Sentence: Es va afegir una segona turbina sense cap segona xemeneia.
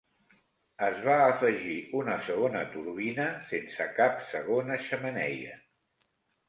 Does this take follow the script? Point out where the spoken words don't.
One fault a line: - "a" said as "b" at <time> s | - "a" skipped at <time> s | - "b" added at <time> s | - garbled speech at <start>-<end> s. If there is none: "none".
none